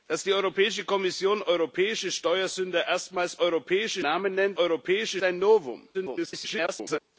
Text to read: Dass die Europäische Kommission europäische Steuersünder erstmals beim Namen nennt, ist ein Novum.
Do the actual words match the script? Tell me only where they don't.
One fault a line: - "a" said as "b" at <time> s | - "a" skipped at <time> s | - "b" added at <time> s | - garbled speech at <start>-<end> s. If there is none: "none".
- "beim" said as "europäische" at 3.4 s
- "ist" said as "europäische" at 4.5 s
- garbled speech at 5.9-7.0 s